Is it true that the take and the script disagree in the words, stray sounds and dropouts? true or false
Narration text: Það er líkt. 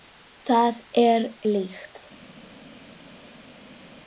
false